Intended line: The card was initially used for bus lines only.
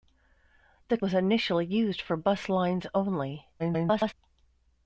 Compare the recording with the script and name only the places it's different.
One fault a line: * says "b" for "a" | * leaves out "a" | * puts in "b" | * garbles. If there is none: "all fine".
* leaves out "card"
* garbles